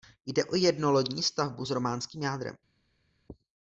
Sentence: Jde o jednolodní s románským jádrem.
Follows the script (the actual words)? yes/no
no